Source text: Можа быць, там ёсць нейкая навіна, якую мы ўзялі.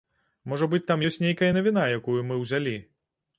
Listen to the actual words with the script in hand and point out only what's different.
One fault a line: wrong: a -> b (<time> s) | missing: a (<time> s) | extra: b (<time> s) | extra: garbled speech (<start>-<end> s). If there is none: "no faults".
no faults